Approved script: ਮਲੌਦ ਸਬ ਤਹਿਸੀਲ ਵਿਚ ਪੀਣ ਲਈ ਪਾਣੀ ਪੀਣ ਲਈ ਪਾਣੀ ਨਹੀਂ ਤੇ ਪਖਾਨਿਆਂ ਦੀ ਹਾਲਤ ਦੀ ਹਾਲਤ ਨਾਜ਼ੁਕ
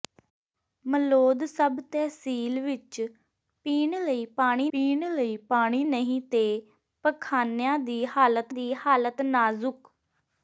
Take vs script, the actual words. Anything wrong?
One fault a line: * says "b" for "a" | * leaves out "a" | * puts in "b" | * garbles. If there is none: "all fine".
all fine